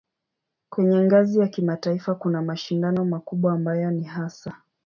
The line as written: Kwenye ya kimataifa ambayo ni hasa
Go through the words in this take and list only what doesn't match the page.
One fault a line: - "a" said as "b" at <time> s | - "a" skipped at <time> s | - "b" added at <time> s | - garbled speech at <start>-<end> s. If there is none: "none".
- "ngazi" added at 1.0 s
- "kuna mashindano makubwa" added at 2.1 s